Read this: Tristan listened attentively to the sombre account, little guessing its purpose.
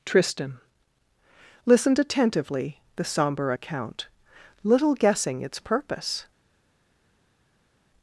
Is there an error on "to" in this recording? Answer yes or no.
yes